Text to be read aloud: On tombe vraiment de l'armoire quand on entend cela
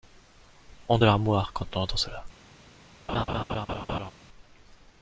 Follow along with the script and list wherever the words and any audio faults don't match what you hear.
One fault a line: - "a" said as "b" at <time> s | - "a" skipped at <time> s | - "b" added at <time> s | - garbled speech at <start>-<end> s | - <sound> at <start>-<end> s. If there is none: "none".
- "tombe vraiment" skipped at 1.0 s
- laugh at 3.1-4.1 s